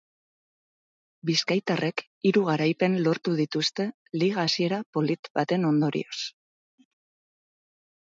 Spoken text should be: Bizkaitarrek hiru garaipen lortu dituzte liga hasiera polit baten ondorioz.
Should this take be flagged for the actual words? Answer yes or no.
no